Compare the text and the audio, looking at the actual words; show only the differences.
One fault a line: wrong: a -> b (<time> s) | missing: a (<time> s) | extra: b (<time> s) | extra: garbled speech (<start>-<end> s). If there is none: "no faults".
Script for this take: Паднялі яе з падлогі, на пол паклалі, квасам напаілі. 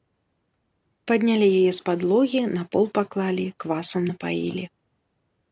no faults